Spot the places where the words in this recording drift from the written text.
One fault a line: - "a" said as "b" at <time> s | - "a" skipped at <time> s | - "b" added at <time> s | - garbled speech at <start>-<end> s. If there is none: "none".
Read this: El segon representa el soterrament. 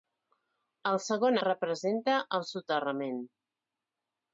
none